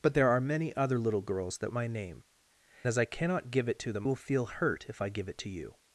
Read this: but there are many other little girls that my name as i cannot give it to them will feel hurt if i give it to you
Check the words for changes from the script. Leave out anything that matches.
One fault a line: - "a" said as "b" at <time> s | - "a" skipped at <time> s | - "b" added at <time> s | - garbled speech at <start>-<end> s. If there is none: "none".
none